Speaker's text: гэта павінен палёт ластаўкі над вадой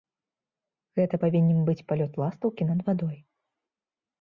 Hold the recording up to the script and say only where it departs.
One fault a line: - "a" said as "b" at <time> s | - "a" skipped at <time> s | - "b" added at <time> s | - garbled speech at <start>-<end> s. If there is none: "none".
- "быць" added at 1.7 s